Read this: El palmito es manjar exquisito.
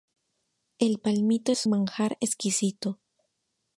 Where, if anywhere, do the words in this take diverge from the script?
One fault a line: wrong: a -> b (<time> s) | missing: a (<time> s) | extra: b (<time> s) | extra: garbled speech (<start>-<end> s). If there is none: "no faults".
no faults